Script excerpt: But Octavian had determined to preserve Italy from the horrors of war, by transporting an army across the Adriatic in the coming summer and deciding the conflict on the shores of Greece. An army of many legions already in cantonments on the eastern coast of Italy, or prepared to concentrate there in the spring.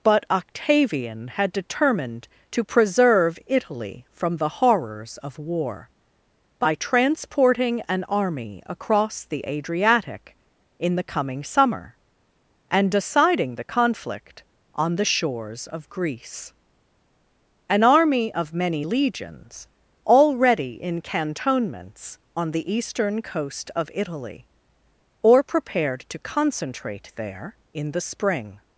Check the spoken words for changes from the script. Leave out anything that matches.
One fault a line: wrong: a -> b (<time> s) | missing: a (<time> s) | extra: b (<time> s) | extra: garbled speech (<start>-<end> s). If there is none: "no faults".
no faults